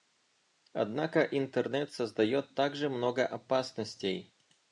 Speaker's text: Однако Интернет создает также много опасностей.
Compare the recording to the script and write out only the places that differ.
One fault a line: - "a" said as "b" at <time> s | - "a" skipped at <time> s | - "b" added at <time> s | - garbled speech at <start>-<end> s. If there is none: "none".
none